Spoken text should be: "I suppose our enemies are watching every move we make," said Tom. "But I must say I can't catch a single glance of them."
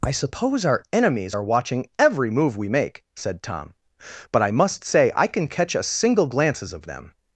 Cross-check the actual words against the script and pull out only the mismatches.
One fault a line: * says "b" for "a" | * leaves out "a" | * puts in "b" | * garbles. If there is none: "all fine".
* says "can" for "can't"
* says "glances" for "glance"